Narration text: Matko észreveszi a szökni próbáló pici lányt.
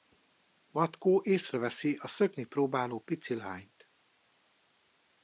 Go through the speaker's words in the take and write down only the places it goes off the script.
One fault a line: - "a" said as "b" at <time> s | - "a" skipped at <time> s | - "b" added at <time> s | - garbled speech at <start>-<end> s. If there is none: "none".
none